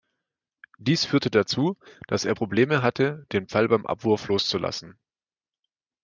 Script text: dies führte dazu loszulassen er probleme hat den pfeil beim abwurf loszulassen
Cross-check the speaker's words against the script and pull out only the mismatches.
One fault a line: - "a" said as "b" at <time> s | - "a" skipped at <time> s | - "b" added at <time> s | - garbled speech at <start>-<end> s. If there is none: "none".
- "loszulassen" said as "dass" at 2.1 s
- "hat" said as "hatte" at 2.8 s